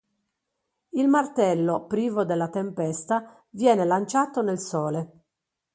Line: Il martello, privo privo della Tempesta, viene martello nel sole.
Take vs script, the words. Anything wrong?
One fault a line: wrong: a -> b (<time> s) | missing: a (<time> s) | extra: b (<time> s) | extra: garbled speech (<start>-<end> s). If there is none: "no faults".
missing: privo (2.2 s)
wrong: martello -> lanciato (3.9 s)